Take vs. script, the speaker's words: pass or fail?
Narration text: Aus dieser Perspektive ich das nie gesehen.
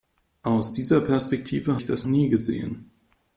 pass